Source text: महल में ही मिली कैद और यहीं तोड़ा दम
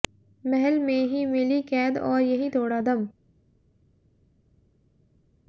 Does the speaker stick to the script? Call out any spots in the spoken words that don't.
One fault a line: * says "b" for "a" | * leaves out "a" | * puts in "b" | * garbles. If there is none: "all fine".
all fine